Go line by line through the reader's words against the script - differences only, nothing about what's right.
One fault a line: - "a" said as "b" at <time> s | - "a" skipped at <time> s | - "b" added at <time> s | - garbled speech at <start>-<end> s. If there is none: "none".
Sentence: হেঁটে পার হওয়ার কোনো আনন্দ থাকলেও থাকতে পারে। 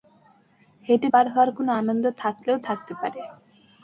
none